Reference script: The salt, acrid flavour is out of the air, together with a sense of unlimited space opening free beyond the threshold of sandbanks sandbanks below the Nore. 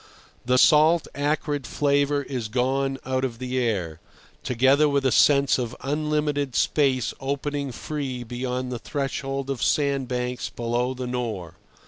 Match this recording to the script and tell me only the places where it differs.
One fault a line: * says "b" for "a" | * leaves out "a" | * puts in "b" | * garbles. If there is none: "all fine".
* puts in "gone"
* leaves out "sandbanks"